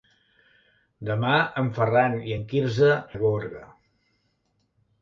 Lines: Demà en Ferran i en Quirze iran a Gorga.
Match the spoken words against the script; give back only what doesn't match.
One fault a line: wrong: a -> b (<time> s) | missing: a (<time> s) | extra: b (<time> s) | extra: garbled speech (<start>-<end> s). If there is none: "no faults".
missing: iran (2.9 s)